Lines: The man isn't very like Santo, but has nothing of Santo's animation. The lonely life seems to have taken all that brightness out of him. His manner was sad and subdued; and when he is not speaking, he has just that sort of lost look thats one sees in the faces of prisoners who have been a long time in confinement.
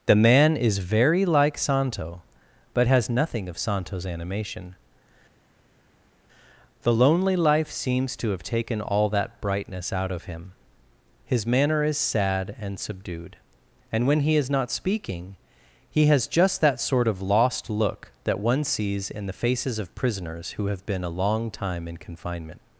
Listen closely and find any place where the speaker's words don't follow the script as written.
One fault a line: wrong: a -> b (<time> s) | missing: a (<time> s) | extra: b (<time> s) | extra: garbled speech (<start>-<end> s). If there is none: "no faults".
wrong: isn't -> is (0.6 s)
wrong: was -> is (11.8 s)
wrong: thats -> that (18.2 s)